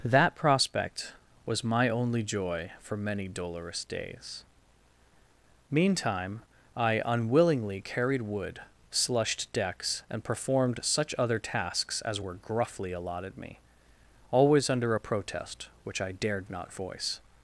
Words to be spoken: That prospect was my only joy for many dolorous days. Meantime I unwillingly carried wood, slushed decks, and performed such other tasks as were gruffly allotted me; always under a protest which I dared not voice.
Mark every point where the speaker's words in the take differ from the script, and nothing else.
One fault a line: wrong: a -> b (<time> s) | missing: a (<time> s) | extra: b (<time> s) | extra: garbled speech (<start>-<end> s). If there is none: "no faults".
no faults